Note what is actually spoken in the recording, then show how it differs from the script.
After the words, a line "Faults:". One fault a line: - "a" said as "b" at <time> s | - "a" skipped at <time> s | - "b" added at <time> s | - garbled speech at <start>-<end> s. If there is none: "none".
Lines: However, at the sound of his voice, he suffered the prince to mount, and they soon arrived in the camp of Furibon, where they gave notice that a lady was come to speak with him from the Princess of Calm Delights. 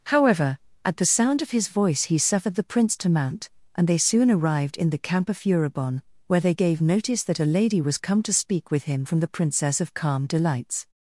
However, at the sound of his voice, he suffered the prince to mount, and they soon arrived in the camp of Furibon, where they gave notice that a lady was come to speak with him from the Princess of Calm Delights.
Faults:
none